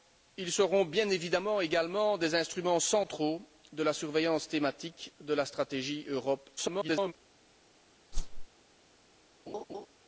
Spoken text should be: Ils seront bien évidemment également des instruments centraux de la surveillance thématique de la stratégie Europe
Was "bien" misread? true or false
false